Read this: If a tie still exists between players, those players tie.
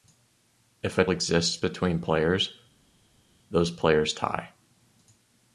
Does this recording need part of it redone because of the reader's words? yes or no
yes